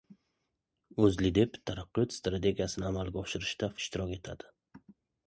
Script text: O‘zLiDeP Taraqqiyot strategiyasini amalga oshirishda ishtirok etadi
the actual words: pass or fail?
pass